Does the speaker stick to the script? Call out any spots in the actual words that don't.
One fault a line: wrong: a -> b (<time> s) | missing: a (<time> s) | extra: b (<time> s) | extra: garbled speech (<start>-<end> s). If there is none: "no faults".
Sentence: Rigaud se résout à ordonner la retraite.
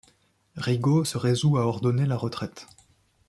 no faults